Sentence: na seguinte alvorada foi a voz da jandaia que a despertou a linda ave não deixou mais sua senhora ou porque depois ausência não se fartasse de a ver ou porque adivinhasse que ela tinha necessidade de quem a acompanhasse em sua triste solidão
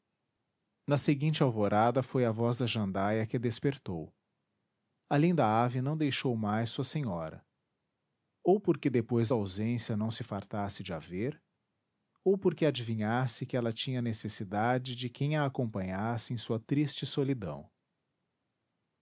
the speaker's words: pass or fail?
pass